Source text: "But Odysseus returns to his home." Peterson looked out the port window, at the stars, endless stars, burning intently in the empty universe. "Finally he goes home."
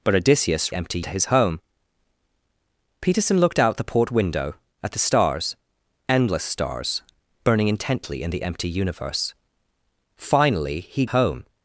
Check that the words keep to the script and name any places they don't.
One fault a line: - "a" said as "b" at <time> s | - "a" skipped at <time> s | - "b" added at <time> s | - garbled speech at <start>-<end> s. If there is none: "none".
- "returns" said as "empty" at 0.7 s
- "goes" skipped at 11.1 s